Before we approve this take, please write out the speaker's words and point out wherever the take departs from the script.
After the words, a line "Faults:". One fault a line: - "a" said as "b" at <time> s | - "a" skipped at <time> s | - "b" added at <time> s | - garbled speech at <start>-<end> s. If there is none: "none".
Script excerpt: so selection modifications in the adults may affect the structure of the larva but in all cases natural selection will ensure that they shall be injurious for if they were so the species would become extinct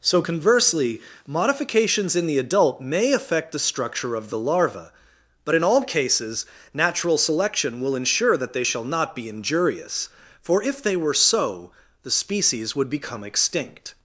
so conversely modifications in the adult may affect the structure of the larva but in all cases natural selection will ensure that they shall not be injurious for if they were so the species would become extinct
Faults:
- "selection" said as "conversely" at 0.2 s
- "adults" said as "adult" at 2.4 s
- "not" added at 8.8 s